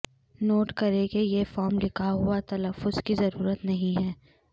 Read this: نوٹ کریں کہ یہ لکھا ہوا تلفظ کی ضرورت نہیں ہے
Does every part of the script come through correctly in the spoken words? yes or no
no